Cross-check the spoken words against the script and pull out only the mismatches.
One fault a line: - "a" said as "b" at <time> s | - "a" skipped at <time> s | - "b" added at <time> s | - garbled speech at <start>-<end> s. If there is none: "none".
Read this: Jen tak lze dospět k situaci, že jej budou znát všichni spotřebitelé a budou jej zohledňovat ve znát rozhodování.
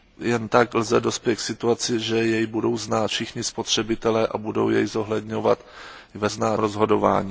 none